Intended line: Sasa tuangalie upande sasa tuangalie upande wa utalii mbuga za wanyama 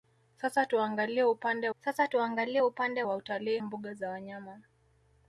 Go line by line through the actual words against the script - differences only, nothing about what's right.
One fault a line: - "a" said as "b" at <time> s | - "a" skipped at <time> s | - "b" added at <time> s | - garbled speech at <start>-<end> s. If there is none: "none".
none